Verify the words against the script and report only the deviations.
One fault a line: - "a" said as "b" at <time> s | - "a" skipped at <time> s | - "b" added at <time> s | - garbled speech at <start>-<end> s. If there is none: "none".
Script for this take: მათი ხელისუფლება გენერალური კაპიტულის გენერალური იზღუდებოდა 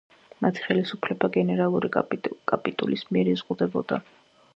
- "გენერალური" said as "მიერ" at 3.1 s